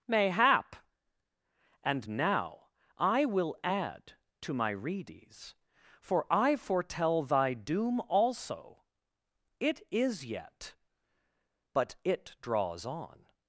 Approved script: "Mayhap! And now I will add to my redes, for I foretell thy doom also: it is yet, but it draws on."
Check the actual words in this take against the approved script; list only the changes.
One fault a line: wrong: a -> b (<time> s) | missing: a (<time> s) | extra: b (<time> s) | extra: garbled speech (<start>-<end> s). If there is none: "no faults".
no faults